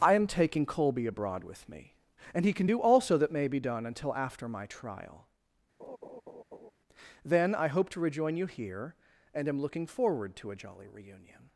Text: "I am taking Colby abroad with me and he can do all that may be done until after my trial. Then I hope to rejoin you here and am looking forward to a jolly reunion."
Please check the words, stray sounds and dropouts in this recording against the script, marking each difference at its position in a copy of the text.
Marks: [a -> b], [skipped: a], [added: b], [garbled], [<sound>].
"I am taking Colby abroad with me and he can do [all -> also] that may be done until after my trial. [laugh] Then I hope to rejoin you here and am looking forward to a jolly reunion."